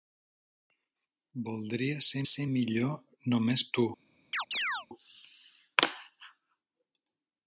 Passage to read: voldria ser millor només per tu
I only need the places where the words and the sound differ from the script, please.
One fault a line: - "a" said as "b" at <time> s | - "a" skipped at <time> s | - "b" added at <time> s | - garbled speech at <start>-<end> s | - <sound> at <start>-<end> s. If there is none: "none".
- "ser" added at 2.3 s
- "per" skipped at 3.7 s
- chirp at 4.3-4.9 s